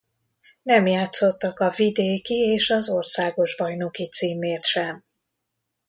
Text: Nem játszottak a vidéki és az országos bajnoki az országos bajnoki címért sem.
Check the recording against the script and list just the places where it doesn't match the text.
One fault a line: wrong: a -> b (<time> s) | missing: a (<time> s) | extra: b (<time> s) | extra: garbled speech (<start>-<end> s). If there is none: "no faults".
missing: az országos bajnoki (4.1 s)